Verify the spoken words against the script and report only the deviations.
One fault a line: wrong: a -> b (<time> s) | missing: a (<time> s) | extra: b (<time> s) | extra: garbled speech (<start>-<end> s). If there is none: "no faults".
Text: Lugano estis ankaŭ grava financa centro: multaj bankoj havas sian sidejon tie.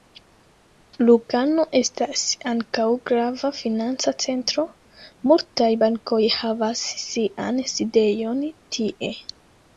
wrong: estis -> estas (1.8 s)